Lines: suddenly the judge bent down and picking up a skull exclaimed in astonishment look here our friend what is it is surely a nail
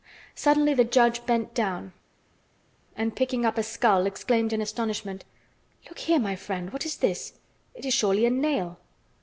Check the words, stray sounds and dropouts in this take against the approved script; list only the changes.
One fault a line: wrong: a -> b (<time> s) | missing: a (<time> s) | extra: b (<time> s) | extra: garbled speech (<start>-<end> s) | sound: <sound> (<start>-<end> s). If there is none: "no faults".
wrong: our -> my (6.2 s)
extra: this (7.0 s)